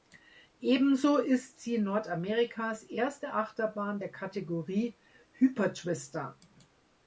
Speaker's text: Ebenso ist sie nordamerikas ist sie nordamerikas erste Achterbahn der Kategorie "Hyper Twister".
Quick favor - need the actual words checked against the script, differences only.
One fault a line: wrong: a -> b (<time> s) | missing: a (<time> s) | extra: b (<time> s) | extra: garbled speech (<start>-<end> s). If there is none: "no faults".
missing: ist sie nordamerikas (2.8 s)